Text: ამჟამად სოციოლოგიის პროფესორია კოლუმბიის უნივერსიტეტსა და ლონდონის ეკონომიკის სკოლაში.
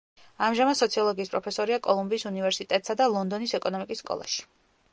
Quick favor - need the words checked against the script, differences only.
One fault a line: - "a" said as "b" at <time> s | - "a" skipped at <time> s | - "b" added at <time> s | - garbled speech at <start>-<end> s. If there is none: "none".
none